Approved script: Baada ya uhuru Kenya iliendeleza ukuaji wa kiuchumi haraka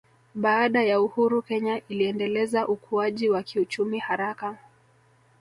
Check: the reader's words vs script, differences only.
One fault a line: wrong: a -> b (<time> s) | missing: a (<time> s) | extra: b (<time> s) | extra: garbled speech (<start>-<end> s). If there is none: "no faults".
no faults